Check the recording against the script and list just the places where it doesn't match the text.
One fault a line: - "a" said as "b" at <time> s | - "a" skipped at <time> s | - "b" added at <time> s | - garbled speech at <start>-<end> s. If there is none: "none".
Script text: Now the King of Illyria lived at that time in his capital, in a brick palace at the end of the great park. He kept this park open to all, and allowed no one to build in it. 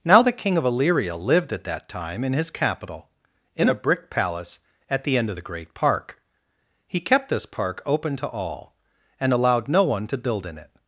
none